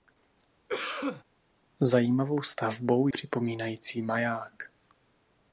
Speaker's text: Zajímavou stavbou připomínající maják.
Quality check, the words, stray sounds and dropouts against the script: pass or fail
fail